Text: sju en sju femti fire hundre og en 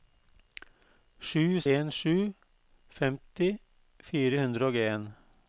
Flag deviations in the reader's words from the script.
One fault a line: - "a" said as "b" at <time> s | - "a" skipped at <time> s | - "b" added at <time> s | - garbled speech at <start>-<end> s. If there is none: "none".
none